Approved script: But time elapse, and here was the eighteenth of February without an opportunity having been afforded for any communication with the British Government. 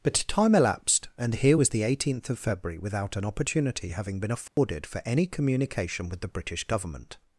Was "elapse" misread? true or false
true